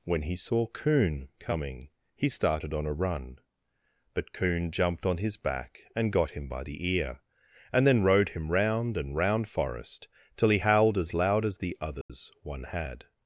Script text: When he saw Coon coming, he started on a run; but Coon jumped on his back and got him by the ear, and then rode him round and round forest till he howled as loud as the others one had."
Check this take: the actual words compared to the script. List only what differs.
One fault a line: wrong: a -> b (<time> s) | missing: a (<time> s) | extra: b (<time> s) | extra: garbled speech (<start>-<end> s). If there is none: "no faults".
no faults